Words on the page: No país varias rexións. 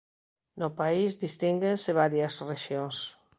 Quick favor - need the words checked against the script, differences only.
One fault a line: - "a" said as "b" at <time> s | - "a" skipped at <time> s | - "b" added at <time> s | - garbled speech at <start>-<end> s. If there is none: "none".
- "distínguense" added at 1.2 s